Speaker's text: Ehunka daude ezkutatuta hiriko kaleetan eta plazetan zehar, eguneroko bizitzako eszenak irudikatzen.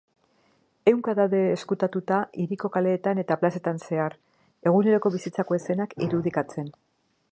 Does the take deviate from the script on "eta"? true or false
false